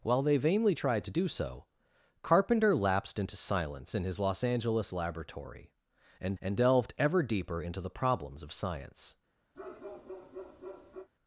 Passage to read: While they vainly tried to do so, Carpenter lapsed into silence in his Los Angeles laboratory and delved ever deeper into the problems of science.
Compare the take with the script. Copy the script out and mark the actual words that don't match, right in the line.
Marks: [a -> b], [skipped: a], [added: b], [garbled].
While they vainly tried to do so, Carpenter lapsed into silence in his Los Angeles laboratory and [added: and] delved ever deeper into the problems of science.